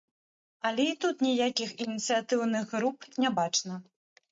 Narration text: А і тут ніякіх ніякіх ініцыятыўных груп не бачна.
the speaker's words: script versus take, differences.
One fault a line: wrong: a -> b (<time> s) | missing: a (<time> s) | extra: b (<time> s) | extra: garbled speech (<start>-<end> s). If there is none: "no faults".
wrong: А -> Але (0.7 s)
missing: ніякіх (1.7 s)